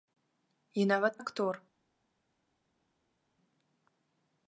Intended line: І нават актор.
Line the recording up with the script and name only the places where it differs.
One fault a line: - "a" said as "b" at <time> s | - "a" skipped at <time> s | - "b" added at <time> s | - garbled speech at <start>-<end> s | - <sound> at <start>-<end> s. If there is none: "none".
none